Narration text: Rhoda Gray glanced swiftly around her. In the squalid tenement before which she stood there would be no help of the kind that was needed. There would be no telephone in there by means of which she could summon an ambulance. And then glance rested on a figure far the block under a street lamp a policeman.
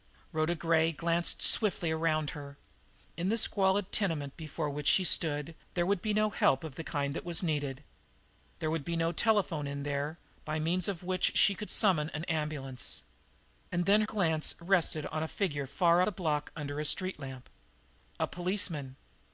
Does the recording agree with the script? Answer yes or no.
yes